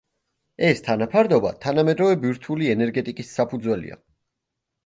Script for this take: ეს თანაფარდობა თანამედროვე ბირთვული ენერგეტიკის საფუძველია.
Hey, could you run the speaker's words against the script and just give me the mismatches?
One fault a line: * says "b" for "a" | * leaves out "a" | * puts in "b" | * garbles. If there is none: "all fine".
all fine